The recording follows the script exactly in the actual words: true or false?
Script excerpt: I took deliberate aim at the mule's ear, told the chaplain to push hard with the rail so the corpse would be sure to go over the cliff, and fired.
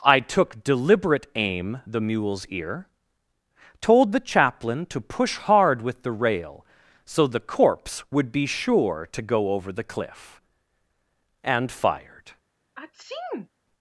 false